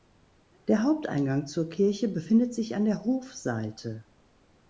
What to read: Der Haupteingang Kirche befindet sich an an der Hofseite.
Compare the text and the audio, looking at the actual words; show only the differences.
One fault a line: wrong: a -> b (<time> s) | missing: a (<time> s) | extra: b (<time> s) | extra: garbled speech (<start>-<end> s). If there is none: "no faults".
extra: zur (1.4 s)
missing: an (2.9 s)